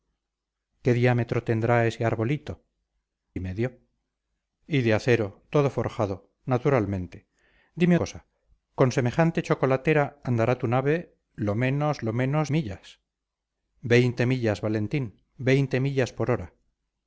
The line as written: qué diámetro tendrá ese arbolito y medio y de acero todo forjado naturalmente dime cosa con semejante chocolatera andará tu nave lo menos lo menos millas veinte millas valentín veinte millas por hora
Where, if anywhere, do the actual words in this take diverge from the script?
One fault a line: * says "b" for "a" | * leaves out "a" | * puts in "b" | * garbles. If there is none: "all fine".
all fine